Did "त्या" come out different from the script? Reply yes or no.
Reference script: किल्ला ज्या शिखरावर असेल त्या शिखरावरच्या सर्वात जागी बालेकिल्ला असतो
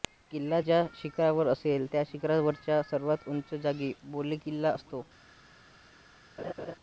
no